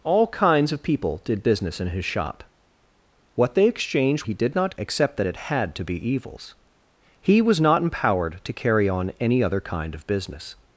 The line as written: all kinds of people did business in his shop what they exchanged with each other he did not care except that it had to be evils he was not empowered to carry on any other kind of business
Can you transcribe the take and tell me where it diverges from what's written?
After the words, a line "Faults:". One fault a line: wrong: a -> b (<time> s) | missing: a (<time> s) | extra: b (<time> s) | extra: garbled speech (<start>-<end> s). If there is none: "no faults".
all kinds of people did business in his shop what they exchanged he did not except that it had to be evils he was not empowered to carry on any other kind of business
Faults:
missing: with each other (4.2 s)
missing: care (4.8 s)